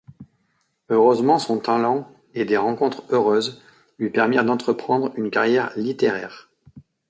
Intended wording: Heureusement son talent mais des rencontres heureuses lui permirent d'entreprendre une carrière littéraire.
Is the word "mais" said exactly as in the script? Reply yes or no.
no